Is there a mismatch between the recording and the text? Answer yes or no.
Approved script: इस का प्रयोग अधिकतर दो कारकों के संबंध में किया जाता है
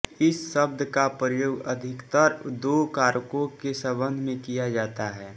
yes